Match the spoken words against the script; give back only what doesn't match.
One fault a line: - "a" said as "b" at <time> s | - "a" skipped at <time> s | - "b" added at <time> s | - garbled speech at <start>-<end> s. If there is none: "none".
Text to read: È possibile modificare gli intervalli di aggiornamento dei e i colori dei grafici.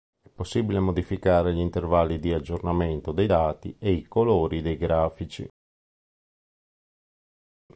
- "dati" added at 3.2 s